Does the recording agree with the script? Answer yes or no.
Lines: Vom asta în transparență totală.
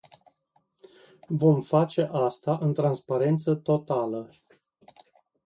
no